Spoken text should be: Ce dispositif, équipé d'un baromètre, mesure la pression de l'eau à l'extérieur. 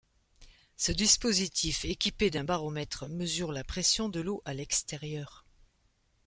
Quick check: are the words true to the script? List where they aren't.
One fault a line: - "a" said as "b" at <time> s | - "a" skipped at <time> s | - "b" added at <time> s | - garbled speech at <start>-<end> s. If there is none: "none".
none